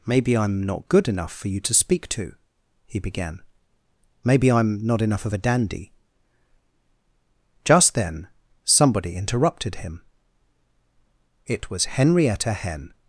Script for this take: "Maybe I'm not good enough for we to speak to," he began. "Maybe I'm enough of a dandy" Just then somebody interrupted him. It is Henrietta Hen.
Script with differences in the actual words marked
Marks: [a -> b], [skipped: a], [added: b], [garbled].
"Maybe I'm not good enough for [we -> you] to speak to," he began. "Maybe I'm [added: not] enough of a dandy" Just then somebody interrupted him. It [is -> was] Henrietta Hen.